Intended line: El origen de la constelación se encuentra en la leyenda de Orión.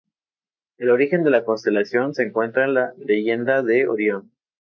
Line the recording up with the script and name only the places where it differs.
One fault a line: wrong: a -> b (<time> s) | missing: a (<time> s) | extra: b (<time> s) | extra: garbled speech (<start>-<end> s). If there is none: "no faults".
no faults